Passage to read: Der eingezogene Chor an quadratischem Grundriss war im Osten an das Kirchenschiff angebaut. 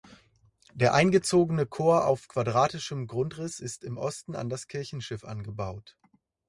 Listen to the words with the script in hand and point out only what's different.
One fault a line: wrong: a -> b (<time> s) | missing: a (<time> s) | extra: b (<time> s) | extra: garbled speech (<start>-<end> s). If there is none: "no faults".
wrong: an -> auf (2.1 s)
wrong: war -> ist (3.6 s)